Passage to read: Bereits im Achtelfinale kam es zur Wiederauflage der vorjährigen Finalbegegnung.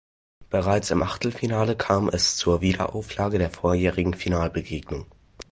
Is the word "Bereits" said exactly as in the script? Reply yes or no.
yes